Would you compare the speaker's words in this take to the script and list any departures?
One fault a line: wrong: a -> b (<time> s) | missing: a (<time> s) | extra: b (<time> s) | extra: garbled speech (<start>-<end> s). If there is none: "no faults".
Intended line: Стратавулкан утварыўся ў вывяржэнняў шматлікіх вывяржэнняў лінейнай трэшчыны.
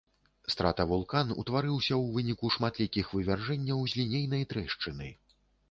wrong: вывяржэнняў -> выніку (2.2 s)
extra: з (3.9 s)